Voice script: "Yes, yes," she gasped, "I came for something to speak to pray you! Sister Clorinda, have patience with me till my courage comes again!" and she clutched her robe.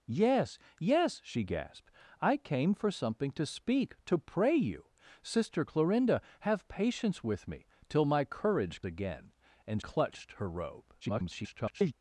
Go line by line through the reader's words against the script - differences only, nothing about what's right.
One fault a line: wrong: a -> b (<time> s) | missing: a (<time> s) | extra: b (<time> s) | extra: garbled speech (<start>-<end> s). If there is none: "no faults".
missing: comes (8.8 s)
missing: she (9.8 s)
extra: garbled speech (11.0-11.9 s)